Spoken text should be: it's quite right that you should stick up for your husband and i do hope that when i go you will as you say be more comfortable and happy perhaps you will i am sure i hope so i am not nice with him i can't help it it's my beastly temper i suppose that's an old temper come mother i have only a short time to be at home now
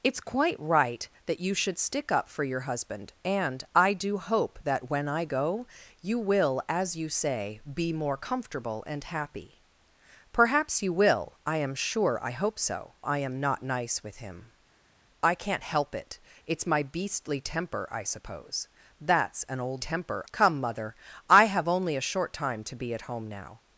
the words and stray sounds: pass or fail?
pass